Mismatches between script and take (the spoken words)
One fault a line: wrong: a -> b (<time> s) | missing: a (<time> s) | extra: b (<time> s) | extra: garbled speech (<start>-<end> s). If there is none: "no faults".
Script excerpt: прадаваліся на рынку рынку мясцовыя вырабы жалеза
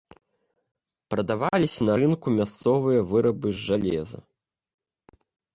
missing: рынку (2.3 s)
extra: з (3.6 s)